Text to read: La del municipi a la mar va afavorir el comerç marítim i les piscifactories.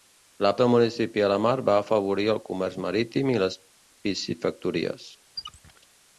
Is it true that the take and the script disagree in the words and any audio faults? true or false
true